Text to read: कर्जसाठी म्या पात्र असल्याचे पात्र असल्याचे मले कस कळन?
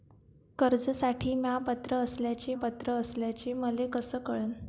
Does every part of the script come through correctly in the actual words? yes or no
yes